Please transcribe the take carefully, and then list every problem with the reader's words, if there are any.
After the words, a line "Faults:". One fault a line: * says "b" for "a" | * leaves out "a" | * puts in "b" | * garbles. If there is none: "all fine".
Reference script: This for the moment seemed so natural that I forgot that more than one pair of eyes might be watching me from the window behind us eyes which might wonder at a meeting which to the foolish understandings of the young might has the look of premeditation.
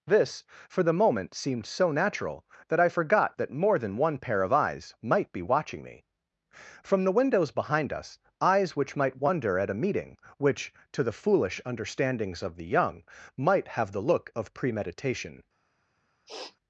This for the moment seemed so natural that I forgot that more than one pair of eyes might be watching me from the windows behind us eyes which might wonder at a meeting which to the foolish understandings of the young might have the look of premeditation.
Faults:
* says "windows" for "window"
* says "have" for "has"